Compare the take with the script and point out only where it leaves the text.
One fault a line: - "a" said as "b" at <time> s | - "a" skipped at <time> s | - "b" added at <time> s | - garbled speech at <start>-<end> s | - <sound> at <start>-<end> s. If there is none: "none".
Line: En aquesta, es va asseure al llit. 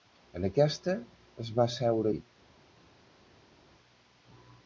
- "al" skipped at 2.1 s